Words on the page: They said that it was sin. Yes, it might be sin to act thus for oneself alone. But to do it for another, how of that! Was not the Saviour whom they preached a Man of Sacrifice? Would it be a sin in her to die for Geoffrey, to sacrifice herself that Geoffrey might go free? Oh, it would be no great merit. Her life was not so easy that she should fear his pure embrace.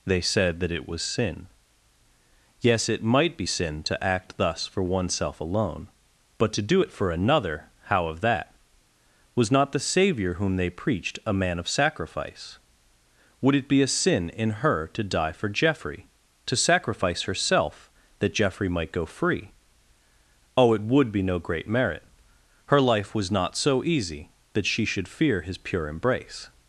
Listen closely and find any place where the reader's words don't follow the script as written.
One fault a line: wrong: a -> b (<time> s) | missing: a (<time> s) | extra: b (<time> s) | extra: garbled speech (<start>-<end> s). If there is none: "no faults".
no faults